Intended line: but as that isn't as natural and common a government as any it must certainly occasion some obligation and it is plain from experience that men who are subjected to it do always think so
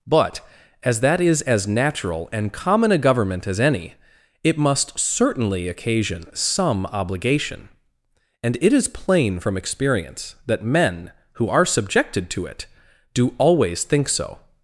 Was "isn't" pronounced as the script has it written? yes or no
no